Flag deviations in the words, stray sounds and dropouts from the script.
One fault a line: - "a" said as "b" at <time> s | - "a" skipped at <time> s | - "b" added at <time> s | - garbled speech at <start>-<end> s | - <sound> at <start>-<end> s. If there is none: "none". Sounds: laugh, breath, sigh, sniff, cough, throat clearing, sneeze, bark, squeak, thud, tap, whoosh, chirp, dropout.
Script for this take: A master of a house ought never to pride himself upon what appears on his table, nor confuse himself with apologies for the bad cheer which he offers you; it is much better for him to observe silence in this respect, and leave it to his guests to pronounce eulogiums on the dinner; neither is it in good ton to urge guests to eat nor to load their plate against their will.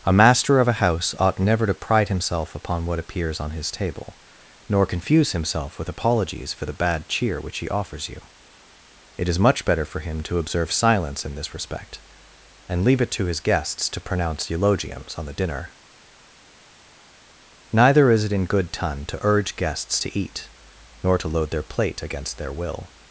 none